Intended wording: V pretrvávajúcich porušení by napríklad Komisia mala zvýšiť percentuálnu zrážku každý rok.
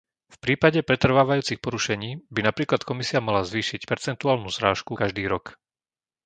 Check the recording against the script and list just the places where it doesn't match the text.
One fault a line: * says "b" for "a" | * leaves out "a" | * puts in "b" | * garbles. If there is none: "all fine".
* puts in "prípade"